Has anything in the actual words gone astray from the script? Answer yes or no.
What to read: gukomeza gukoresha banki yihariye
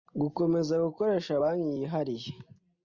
no